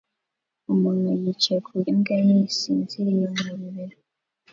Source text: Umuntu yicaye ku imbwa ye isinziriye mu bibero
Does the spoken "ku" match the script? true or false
true